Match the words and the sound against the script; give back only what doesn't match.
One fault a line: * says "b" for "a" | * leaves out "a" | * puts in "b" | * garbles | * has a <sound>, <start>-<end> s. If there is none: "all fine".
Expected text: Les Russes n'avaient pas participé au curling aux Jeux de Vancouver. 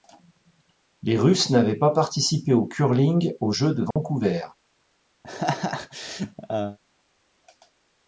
* has a dropout, 3.9-4.0 s
* has a laugh, 5.2-6.8 s